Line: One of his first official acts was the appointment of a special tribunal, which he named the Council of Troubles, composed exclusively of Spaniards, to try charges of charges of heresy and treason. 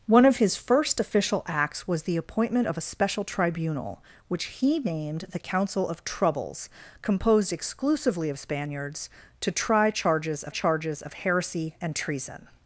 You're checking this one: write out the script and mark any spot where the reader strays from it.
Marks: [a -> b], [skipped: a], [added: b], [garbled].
One of his first official acts was the appointment of a special tribunal, which he named the Council of Troubles, composed exclusively of Spaniards, to try charges of charges of heresy and treason.